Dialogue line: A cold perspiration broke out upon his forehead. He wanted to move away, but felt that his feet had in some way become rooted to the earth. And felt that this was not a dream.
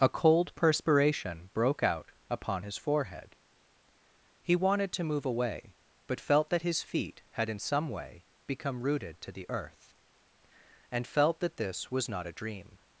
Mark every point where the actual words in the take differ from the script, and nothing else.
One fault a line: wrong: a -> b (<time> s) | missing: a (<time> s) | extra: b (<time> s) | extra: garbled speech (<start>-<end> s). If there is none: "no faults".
no faults